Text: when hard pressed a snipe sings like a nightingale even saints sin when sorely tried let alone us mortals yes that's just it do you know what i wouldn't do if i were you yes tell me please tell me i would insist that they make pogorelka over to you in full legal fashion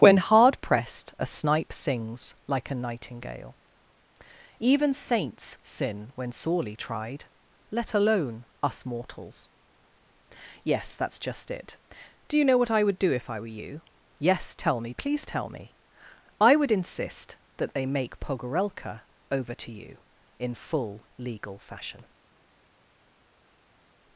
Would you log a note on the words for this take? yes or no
yes